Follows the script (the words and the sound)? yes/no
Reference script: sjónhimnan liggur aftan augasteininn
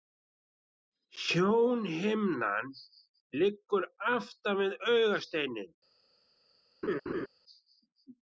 no